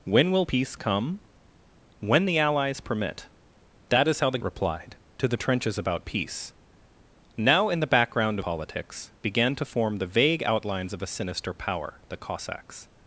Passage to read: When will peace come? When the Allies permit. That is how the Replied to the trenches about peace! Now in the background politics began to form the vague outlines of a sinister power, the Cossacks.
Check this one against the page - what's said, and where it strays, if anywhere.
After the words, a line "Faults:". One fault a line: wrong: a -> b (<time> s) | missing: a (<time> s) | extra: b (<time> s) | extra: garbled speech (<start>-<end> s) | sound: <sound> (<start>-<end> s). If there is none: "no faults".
When will peace come? When the Allies permit. That is how the Replied to the trenches about peace! Now in the background politics began to form the vague outlines of a sinister power, the Cossacks.
Faults:
no faults